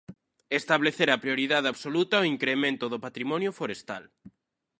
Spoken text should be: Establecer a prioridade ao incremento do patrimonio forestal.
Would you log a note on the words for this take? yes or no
yes